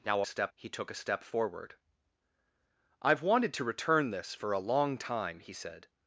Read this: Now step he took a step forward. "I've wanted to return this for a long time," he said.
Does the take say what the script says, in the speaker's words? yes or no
yes